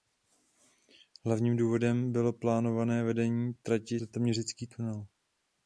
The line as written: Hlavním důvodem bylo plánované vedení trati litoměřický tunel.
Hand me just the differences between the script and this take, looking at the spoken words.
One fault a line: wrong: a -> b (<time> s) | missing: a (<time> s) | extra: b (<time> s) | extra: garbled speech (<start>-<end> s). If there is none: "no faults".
no faults